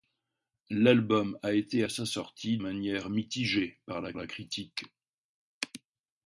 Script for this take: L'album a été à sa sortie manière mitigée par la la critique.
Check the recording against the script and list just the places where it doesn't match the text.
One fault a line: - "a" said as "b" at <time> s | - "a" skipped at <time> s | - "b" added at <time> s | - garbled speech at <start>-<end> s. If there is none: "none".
none